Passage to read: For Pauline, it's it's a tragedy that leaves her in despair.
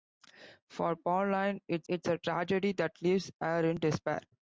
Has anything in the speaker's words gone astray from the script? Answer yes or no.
no